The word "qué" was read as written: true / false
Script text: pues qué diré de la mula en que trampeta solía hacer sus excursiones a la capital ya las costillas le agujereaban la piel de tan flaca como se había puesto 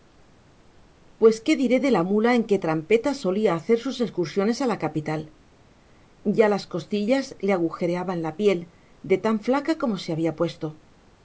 true